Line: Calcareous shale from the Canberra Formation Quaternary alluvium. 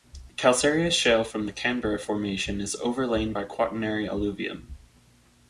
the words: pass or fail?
fail